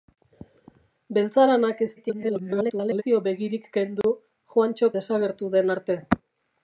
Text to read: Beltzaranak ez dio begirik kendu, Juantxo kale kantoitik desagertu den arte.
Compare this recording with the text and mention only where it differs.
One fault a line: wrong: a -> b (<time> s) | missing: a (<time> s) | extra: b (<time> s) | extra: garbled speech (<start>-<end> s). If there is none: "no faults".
extra: garbled speech (2.0-3.0 s)
missing: kale kantoitik (4.9 s)